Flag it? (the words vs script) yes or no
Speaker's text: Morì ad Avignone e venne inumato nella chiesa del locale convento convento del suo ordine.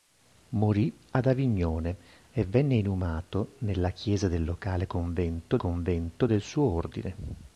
no